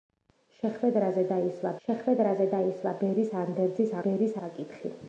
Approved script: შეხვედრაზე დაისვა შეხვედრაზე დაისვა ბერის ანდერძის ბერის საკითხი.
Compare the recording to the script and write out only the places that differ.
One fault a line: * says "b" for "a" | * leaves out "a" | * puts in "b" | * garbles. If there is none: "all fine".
all fine